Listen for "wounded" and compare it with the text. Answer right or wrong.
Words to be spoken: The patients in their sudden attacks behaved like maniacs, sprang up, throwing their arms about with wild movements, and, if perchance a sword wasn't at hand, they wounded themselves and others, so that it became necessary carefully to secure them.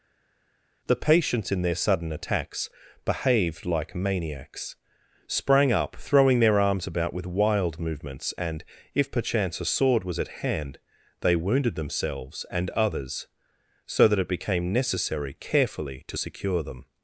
right